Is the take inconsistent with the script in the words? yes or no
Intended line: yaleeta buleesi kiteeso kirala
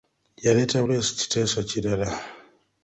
no